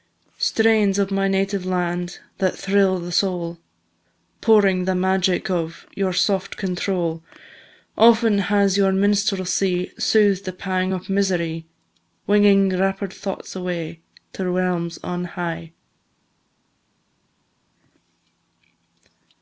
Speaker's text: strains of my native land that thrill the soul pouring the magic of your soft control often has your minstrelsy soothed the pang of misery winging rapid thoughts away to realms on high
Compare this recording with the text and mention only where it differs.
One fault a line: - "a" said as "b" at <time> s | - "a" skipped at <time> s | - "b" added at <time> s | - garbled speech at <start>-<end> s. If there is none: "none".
none